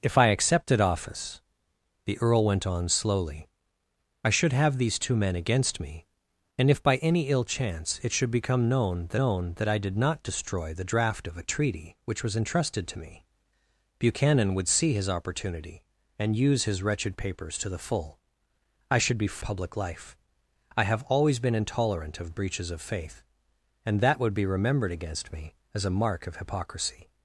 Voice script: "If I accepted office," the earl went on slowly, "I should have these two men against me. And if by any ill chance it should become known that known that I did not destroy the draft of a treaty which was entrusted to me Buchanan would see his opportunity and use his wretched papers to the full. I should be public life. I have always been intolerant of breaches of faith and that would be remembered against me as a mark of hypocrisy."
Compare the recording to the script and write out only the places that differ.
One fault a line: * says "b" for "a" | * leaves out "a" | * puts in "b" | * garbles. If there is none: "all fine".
all fine